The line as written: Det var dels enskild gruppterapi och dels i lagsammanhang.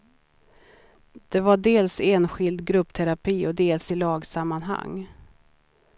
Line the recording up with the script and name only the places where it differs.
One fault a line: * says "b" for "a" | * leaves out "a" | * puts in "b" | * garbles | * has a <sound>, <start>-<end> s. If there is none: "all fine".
all fine